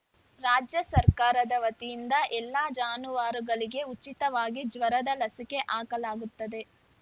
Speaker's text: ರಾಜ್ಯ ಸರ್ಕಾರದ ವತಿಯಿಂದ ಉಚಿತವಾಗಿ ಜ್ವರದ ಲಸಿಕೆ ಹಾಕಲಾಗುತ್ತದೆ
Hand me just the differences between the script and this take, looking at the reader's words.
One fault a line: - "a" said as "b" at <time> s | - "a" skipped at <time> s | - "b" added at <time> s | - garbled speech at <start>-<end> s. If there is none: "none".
- "ಎಲ್ಲ ಜಾನುವಾರುಗಳಿಗೆ" added at 2.4 s